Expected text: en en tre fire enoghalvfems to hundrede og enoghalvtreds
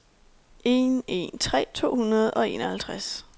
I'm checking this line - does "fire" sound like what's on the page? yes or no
no